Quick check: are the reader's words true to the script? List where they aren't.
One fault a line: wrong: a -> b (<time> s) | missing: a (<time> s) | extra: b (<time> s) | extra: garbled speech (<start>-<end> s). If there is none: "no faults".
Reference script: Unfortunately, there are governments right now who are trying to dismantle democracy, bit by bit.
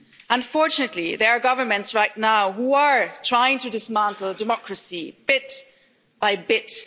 no faults